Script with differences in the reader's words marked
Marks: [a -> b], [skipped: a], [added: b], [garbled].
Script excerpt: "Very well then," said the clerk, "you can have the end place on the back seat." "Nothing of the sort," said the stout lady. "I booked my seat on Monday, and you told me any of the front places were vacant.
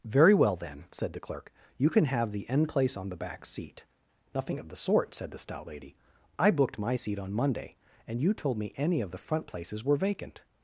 "Very well then," said the clerk, "you can have the end place on the back seat." "Nothing of the sort," said the stout lady. "I booked my seat on Monday, and you told me any of the front places were vacant.